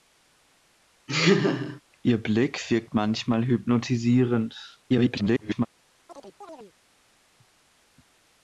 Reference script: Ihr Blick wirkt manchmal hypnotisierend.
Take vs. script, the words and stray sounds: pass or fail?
fail